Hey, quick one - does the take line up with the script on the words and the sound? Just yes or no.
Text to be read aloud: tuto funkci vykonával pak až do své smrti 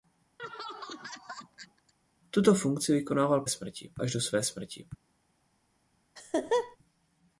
no